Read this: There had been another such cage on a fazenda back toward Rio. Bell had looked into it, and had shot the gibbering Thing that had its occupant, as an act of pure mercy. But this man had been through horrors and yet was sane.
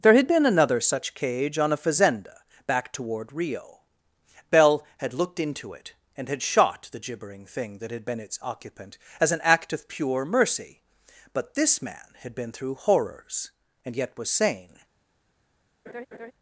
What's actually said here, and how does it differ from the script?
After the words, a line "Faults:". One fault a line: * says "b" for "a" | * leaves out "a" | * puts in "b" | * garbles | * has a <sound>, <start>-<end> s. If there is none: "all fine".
There had been another such cage on a fazenda back toward Rio. Bell had looked into it, and had shot the gibbering Thing that had been its occupant, as an act of pure mercy. But this man had been through horrors and yet was sane.
Faults:
* puts in "been"
* has a laugh, 15.9-16.3 s